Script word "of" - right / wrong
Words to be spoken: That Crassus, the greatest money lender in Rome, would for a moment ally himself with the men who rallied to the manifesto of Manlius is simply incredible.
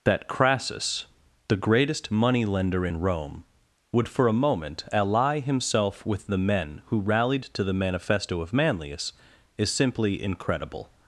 right